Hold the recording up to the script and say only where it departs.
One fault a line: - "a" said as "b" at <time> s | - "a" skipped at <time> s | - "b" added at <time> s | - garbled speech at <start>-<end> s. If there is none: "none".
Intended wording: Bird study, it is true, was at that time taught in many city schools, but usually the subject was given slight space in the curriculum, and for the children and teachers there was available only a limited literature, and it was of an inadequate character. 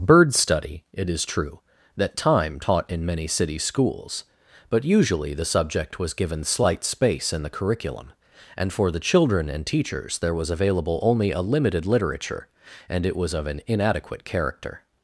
- "was at" skipped at 1.6 s